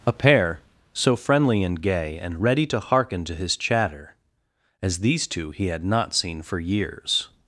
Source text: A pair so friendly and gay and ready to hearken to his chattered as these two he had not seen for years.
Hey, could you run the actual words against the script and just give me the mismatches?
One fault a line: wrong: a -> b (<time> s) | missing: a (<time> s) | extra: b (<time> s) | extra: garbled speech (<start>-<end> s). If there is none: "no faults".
wrong: chattered -> chatter (3.6 s)